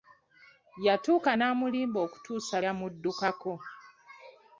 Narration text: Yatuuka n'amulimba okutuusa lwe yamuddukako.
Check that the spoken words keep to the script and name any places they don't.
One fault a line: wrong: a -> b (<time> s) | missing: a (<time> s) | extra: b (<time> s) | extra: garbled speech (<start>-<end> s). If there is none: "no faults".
missing: lwe (2.6 s)